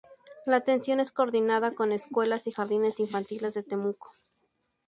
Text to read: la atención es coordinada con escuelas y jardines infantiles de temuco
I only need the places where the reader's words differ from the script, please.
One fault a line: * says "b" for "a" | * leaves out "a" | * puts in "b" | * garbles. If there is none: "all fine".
all fine